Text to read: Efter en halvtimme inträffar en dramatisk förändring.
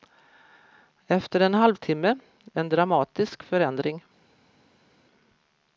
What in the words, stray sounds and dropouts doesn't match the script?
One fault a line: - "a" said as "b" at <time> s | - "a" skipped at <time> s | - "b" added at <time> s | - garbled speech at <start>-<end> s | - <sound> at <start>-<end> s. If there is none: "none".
- "inträffar" skipped at 2.2 s